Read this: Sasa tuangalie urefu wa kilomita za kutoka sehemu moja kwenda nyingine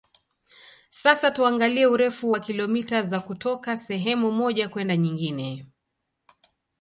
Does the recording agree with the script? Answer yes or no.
yes